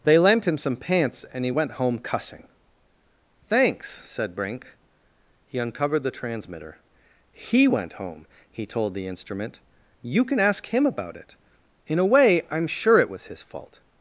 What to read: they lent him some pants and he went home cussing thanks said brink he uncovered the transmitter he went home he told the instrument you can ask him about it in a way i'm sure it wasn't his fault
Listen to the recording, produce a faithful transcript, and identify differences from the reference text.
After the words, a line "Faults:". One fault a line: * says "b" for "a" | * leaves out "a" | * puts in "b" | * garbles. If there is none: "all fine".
they lent him some pants and he went home cussing thanks said brink he uncovered the transmitter he went home he told the instrument you can ask him about it in a way i'm sure it was his fault
Faults:
* says "was" for "wasn't"